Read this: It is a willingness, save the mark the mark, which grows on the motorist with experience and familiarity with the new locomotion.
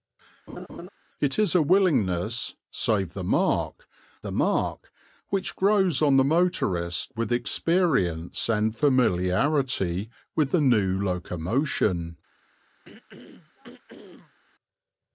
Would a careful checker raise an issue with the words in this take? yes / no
no